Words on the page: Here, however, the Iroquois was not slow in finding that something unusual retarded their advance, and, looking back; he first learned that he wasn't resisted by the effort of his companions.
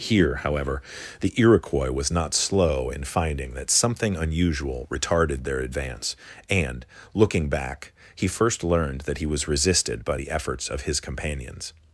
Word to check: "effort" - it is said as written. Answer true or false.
false